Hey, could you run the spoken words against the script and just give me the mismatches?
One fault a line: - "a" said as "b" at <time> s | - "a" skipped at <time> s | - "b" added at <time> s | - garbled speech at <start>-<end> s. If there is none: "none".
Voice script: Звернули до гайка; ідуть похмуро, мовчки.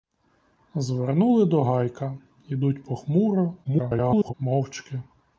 - garbled speech at 3.6-4.3 s